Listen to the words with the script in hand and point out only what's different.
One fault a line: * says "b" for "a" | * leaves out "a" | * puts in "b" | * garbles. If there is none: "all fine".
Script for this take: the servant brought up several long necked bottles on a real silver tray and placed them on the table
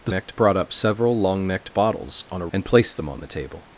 * says "necked" for "servant"
* leaves out "real silver tray"